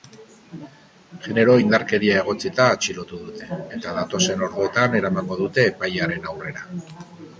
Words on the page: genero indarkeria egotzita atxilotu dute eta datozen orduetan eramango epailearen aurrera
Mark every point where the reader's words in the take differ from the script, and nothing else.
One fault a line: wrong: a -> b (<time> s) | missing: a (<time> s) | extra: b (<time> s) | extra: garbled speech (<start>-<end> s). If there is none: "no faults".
extra: dute (5.4 s)